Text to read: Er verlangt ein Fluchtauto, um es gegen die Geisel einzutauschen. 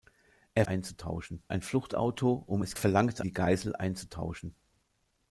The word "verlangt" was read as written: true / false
false